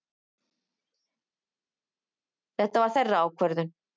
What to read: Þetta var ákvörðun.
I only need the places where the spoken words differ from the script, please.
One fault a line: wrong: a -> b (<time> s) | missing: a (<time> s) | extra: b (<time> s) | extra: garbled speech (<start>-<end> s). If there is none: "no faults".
extra: þeirra (3.0 s)